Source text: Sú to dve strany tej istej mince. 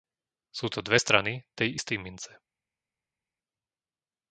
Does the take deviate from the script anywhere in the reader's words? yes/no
no